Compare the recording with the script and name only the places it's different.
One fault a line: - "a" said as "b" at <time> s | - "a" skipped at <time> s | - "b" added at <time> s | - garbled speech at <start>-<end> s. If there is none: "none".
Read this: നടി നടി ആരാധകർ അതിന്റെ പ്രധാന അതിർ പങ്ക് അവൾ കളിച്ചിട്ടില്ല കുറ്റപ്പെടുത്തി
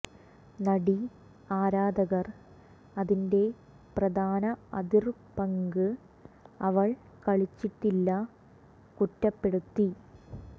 - "നടി" skipped at 0.9 s